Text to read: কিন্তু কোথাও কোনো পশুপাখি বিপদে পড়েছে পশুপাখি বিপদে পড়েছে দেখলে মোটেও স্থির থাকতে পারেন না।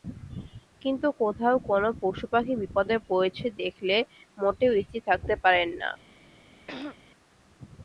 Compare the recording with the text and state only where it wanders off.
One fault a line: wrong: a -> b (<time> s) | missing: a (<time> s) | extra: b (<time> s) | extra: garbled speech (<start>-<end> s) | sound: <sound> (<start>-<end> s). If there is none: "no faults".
missing: পশুপাখি বিপদে পড়েছে (3.5 s)
sound: throat clearing (6.7-7.0 s)